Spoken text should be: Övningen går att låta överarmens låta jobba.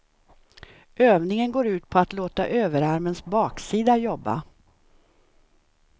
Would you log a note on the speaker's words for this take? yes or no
yes